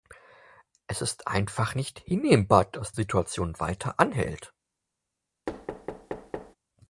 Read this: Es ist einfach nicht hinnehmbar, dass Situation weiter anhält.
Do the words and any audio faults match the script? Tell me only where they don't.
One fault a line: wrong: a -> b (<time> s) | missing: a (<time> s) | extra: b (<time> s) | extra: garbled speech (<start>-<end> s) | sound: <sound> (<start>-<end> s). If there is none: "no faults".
sound: thud (5.5-6.6 s)